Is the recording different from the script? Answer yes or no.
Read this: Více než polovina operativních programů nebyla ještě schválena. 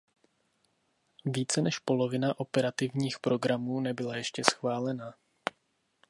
no